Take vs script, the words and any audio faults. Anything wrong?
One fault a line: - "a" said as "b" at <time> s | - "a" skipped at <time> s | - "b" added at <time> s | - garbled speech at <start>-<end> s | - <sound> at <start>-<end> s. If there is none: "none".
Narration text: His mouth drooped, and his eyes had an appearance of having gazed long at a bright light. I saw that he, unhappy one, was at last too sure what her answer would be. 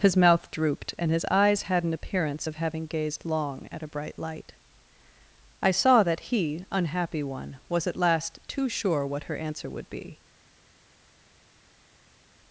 none